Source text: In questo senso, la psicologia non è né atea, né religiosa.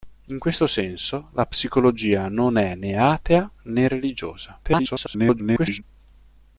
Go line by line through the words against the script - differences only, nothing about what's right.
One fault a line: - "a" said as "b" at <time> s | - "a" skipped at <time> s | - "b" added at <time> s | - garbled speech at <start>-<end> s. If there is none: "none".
- garbled speech at 4.6-5.8 s